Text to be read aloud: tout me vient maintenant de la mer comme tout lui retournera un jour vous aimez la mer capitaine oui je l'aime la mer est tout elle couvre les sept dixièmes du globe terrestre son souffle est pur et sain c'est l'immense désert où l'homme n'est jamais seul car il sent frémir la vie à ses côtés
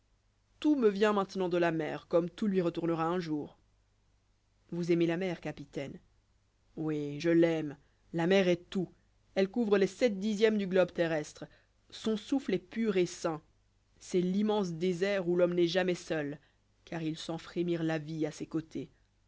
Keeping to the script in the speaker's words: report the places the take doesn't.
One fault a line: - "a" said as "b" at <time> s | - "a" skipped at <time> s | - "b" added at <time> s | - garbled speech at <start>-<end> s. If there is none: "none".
none